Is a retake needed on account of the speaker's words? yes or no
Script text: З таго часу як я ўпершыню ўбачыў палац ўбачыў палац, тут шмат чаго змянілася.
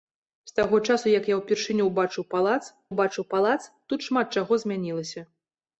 no